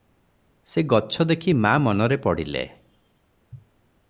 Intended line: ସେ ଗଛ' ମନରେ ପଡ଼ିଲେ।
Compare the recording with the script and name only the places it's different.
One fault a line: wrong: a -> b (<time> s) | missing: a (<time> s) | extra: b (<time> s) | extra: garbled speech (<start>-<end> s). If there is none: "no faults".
extra: ଦେଖି ମା (1.2 s)